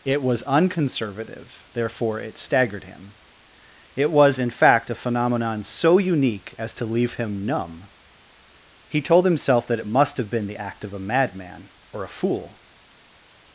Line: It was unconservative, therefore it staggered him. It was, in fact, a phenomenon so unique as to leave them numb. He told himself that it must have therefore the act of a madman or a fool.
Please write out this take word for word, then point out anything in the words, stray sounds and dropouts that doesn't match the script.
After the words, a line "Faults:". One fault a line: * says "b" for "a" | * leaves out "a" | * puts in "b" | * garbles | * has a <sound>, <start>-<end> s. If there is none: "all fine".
It was unconservative, therefore it staggered him. It was, in fact, a phenomenon so unique as to leave him numb. He told himself that it must have been the act of a madman or a fool.
Faults:
* says "him" for "them"
* says "been" for "therefore"